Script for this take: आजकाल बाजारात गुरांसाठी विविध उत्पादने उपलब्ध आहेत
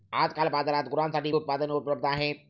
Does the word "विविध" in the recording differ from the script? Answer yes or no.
yes